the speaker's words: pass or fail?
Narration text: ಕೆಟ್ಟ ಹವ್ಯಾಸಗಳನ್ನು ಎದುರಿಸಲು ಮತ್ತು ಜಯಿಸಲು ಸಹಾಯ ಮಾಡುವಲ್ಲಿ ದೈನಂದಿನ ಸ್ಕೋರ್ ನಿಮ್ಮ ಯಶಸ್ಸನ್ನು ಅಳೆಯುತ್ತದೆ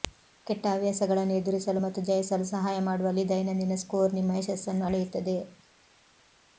pass